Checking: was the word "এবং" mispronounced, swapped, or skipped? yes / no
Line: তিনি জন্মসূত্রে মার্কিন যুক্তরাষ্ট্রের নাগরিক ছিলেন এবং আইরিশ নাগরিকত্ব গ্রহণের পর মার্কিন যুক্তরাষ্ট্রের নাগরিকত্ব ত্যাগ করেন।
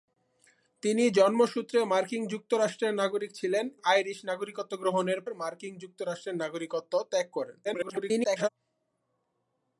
yes